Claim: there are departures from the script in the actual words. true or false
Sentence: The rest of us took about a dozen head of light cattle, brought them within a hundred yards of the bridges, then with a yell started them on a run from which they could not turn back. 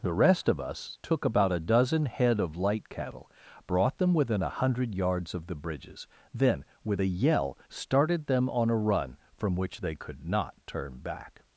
false